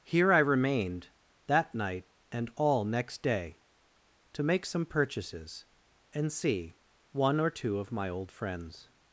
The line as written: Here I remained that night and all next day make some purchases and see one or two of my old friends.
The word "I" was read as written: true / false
true